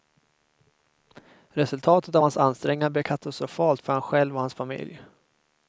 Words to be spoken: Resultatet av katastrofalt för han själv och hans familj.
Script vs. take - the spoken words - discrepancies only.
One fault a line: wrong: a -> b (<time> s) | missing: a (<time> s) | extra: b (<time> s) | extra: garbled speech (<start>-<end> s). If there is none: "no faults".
extra: hans ansträngningar blev (2.2 s)